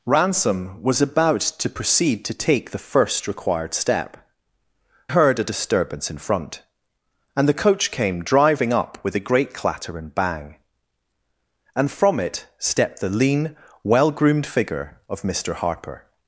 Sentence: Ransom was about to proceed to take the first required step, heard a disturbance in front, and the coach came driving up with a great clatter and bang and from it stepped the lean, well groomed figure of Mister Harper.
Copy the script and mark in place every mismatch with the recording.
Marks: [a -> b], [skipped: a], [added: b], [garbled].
Ransom was about to proceed to take the first required step, heard a disturbance in front, and the coach came driving up with a great clatter and bang and from it stepped the lean, well groomed figure of Mister Harper.